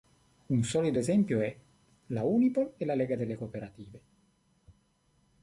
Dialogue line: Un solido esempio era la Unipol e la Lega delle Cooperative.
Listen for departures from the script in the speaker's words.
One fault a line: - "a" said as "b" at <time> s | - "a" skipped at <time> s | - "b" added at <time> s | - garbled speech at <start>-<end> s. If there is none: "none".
- "era" said as "è" at 1.4 s